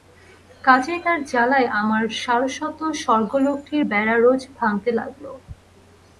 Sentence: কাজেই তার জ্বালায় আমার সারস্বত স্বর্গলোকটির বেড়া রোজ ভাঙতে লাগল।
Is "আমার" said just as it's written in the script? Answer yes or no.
yes